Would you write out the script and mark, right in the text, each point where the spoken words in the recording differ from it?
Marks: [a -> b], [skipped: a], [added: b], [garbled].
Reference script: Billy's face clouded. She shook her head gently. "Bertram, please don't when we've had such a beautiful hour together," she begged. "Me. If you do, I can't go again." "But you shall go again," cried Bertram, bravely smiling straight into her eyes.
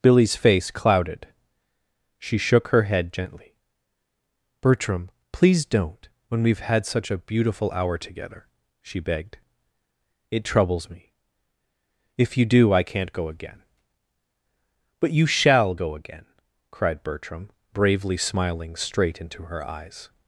Billy's face clouded. She shook her head gently. "Bertram, please don't when we've had such a beautiful hour together," she begged. [added: It troubles] "Me. If you do, I can't go again." "But you shall go again," cried Bertram, bravely smiling straight into her eyes.